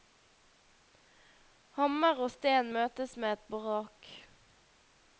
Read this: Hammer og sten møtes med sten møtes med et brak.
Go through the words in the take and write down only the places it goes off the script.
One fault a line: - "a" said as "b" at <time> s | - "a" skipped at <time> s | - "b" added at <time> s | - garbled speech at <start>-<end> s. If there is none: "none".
- "sten møtes med" skipped at 3.4 s